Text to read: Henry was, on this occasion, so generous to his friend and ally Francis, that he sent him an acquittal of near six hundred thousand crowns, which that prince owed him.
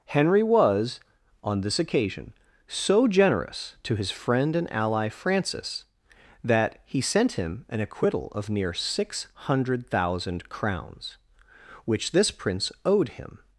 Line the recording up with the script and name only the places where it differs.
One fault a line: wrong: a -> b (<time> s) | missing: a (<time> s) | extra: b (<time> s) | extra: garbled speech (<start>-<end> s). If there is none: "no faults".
wrong: that -> this (12.1 s)